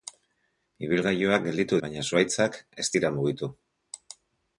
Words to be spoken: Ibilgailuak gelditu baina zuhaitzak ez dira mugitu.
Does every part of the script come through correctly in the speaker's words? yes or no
yes